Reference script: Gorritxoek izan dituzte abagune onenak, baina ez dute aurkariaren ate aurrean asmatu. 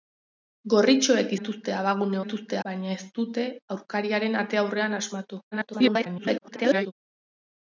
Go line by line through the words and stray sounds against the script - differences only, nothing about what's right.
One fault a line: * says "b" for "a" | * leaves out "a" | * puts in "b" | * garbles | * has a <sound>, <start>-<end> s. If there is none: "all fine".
* leaves out "izan"
* says "dituzte" for "onenak"
* garbles